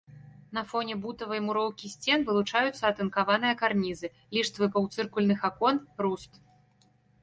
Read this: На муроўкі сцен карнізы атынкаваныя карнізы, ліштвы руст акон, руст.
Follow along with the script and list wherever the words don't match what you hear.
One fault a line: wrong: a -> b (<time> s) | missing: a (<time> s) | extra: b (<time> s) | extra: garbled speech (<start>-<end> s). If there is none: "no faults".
extra: фоне бутавай (0.7 s)
wrong: карнізы -> вылучаюцца (2.3 s)
wrong: руст -> паўцыркульных (4.8 s)